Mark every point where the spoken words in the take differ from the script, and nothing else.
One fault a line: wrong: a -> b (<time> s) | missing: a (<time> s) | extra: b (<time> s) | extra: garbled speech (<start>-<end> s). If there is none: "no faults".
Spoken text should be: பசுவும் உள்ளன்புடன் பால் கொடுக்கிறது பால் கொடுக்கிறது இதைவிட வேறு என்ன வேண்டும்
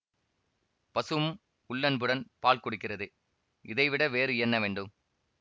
missing: பால் கொடுக்கிறது (3.1 s)